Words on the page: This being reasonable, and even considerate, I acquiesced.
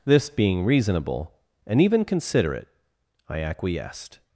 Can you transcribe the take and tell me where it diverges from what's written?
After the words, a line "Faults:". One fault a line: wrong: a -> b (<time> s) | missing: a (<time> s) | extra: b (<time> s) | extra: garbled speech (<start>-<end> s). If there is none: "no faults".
This being reasonable, and even considerate, I acquiesced.
Faults:
no faults